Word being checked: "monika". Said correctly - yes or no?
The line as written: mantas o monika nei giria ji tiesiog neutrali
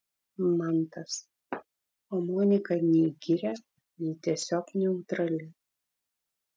yes